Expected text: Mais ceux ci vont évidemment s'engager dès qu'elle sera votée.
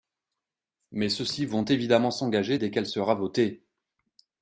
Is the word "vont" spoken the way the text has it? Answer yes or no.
yes